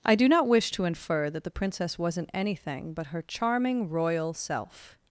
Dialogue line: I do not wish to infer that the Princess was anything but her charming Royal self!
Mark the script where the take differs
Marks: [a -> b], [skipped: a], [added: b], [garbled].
I do not wish to infer that the Princess [was -> wasn't] anything but her charming Royal self!